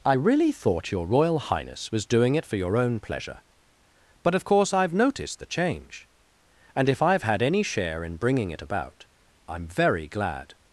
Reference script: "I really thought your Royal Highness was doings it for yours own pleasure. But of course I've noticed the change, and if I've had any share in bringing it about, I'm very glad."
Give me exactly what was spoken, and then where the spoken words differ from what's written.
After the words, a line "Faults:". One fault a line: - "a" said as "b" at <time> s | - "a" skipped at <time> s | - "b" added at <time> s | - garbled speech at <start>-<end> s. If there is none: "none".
"I really thought your Royal Highness was doing it for your own pleasure. But of course I've noticed the change, and if I've had any share in bringing it about, I'm very glad."
Faults:
- "doings" said as "doing" at 2.0 s
- "yours" said as "your" at 2.5 s